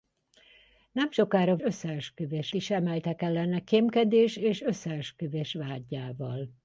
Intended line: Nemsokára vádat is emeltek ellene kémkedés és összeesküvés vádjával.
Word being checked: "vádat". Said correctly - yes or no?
no